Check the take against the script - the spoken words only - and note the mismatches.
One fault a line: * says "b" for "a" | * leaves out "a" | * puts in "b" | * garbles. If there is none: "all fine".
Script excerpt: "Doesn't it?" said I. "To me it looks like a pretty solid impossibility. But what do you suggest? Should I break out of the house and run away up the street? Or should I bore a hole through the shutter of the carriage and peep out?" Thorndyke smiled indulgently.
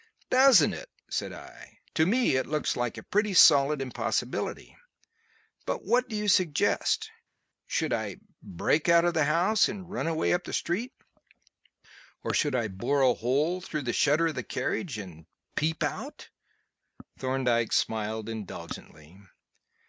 all fine